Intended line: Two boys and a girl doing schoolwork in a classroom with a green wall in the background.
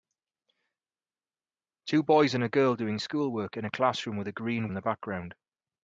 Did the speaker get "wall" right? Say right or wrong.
wrong